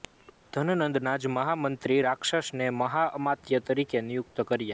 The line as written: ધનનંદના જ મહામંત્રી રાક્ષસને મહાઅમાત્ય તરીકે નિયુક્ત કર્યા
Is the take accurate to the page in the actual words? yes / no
yes